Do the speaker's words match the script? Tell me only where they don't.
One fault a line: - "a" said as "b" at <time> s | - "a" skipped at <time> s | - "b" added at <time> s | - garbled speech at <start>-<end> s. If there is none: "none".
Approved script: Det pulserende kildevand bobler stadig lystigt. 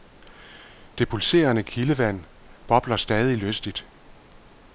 none